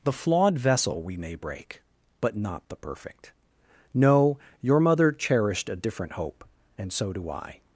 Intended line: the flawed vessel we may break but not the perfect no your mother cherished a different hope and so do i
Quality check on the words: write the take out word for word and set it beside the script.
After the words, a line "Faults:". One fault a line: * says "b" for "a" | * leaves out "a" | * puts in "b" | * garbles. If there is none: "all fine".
the flawed vessel we may break but not the perfect no your mother cherished a different hope and so do i
Faults:
all fine